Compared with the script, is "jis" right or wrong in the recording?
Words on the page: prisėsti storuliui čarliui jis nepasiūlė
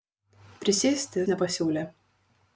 wrong